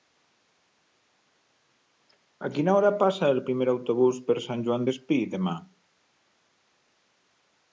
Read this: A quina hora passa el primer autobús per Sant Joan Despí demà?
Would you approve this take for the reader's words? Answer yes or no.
yes